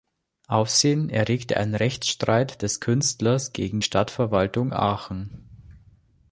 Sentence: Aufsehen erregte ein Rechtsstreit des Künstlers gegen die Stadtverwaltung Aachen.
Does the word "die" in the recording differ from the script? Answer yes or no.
yes